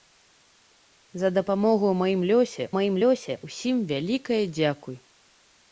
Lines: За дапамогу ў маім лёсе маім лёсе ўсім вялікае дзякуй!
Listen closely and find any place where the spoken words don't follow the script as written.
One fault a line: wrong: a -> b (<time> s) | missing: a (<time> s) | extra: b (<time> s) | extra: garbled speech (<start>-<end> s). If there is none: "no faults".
no faults